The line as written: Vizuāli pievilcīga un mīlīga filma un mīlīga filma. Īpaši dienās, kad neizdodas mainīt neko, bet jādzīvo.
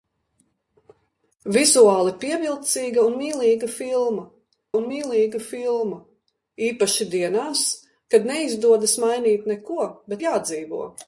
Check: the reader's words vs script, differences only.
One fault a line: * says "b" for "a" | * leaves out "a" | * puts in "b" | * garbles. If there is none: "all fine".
all fine